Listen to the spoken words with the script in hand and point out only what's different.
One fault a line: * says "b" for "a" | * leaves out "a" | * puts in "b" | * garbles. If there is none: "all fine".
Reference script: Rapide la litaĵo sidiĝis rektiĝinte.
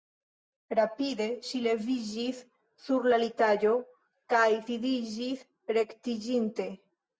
* puts in "ŝi leviĝis sur"
* puts in "kaj"